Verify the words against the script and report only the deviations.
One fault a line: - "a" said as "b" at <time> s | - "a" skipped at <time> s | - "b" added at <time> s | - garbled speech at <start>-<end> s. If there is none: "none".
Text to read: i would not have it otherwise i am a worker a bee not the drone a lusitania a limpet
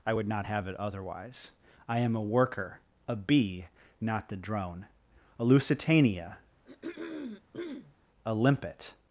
none